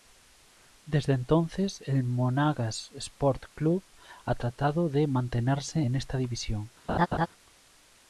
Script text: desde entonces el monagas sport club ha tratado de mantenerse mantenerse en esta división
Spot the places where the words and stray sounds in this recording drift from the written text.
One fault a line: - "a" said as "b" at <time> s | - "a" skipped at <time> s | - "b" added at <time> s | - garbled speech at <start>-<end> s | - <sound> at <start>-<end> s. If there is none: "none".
- "mantenerse" skipped at 5.8 s
- laugh at 6.9-7.3 s